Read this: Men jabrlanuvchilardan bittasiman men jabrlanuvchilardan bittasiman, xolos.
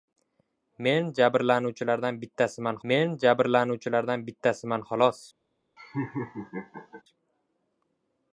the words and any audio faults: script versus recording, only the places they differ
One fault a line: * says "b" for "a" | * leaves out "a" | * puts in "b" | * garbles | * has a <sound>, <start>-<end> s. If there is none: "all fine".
* has a laugh, 5.8-7.0 s